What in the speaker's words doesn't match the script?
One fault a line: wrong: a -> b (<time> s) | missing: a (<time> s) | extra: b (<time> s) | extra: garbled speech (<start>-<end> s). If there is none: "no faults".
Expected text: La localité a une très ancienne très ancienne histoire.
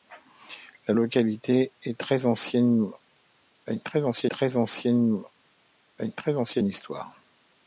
no faults